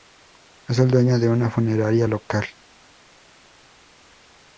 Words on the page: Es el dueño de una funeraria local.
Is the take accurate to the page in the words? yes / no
yes